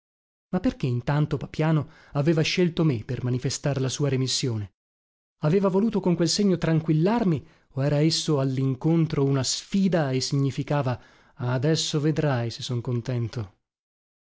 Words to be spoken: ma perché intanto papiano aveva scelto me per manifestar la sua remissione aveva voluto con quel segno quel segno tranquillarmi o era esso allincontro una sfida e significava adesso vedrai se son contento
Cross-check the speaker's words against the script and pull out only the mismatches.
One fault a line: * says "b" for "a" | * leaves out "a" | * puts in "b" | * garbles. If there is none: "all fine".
* leaves out "quel segno"